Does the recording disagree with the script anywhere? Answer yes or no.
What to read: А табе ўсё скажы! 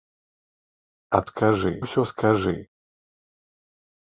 yes